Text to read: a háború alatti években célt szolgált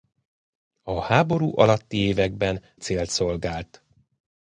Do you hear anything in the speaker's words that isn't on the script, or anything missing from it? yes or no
no